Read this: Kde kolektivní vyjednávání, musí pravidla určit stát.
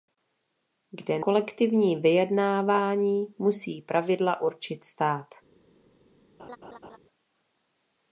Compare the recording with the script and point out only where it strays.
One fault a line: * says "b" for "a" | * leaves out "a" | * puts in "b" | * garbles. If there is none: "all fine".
all fine